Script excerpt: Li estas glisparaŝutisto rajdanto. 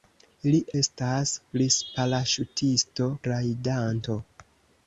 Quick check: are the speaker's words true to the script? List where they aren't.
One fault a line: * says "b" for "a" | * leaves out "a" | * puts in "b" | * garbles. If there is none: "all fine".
all fine